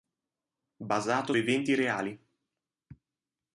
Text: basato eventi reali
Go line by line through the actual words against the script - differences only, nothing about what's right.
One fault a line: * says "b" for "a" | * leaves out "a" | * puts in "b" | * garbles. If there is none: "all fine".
all fine